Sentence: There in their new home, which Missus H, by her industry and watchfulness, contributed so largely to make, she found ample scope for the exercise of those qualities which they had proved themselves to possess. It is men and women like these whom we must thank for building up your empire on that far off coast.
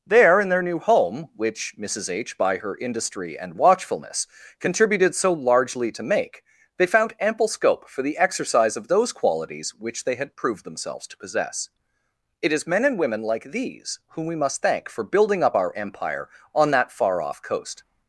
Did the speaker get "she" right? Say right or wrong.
wrong